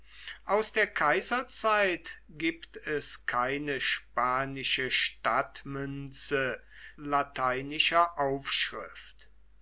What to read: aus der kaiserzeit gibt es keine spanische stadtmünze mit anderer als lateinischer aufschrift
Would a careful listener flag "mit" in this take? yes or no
yes